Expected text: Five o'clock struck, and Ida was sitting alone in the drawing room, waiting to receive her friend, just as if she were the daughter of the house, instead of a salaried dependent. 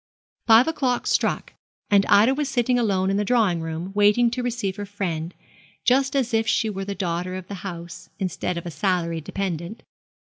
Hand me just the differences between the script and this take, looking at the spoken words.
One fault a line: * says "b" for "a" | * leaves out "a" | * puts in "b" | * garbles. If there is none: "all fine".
all fine